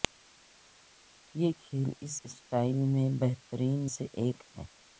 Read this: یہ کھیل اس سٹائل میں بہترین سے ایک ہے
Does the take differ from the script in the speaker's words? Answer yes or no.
no